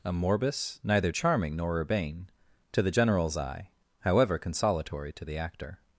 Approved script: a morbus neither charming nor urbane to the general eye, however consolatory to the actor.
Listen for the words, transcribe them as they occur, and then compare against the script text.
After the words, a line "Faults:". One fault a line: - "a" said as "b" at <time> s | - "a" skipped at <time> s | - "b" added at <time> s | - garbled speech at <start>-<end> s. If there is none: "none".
a morbus neither charming nor urbane to the generals eye, however consolatory to the actor.
Faults:
- "general" said as "generals" at 2.9 s